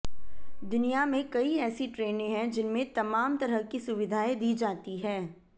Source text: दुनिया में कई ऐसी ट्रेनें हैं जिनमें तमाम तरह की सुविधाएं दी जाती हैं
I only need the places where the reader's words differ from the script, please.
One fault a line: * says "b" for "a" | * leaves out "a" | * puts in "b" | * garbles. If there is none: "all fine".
all fine